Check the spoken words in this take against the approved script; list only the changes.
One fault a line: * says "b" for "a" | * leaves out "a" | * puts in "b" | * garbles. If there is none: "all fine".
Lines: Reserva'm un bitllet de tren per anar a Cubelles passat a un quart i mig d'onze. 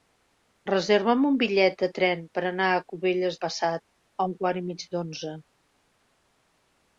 all fine